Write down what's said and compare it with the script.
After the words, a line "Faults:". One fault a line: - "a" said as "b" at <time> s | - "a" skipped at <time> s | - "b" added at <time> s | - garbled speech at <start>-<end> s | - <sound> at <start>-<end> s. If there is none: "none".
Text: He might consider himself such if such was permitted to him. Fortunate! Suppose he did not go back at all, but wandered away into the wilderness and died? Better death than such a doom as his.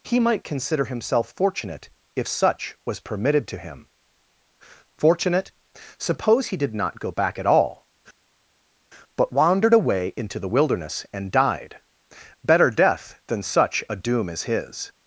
He might consider himself fortunate if such was permitted to him. Fortunate! Suppose he did not go back at all, but wandered away into the wilderness and died? Better death than such a doom as his.
Faults:
- "such" said as "fortunate" at 1.4 s